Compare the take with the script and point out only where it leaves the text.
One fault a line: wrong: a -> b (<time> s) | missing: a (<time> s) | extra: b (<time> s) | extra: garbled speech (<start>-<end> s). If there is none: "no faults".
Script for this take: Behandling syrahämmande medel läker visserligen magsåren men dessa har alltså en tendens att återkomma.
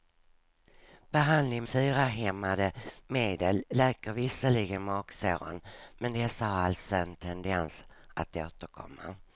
no faults